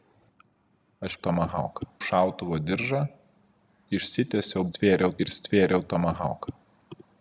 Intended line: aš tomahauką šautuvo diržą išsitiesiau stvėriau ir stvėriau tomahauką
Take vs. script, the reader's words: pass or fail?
pass